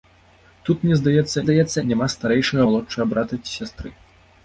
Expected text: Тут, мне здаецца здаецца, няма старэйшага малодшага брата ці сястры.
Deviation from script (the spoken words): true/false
false